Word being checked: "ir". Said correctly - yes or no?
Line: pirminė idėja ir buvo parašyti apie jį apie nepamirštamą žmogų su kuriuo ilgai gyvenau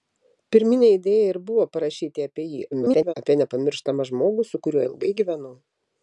yes